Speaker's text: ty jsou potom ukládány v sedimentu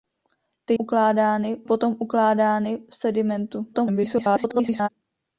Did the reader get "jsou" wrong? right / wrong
wrong